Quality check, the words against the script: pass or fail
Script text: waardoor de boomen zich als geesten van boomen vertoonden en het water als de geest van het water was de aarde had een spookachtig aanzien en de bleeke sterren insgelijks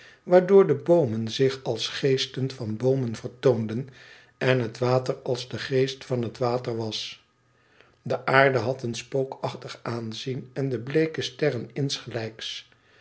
pass